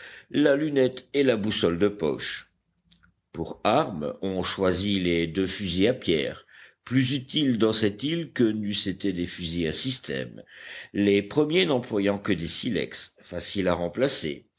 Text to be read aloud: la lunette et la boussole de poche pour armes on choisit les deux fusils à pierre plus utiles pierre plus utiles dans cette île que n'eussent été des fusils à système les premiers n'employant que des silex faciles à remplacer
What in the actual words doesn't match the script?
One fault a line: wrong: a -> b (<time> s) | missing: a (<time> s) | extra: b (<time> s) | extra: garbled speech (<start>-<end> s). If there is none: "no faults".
missing: pierre plus utiles (7.6 s)